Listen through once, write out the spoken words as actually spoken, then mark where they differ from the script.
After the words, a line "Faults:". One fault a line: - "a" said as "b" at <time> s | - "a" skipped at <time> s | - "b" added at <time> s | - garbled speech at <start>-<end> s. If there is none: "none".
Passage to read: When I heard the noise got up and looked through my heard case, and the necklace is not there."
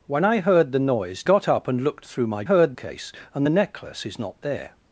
When I heard the noise got up and looked through my heard case, and the necklace is not there."
Faults:
none